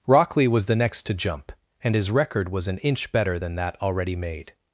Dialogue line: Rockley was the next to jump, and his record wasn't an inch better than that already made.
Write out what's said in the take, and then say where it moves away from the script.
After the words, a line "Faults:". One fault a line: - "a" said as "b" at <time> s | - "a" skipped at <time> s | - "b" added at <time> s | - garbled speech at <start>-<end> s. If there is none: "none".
Rockley was the next to jump, and his record was an inch better than that already made.
Faults:
- "wasn't" said as "was" at 2.5 s